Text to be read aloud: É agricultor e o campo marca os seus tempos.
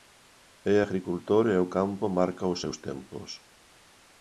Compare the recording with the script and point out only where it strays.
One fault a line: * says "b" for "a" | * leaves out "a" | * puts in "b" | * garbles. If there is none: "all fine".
all fine